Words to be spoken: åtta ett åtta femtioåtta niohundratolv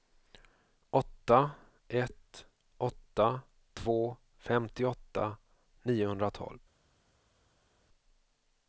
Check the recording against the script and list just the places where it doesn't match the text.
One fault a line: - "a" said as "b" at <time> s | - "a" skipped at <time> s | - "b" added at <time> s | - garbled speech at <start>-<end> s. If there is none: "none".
- "två" added at 3.7 s